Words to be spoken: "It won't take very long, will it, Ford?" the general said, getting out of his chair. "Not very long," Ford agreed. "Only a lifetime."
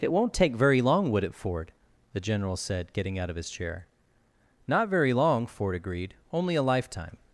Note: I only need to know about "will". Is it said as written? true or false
false